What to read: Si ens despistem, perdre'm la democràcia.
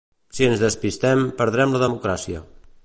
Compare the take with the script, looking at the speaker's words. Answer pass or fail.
pass